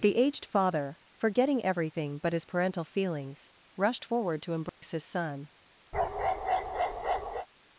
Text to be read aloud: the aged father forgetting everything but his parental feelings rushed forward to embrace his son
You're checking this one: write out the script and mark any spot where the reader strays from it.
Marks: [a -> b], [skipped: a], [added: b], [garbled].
the aged father forgetting everything but his parental feelings rushed forward to embrace his son